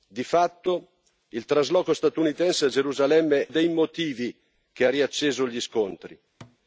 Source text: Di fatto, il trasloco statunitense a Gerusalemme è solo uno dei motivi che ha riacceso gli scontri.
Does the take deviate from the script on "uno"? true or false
true